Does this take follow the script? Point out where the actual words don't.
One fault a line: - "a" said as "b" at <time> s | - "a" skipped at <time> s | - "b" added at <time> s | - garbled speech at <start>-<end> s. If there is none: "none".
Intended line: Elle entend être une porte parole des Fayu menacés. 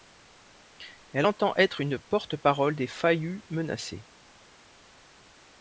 none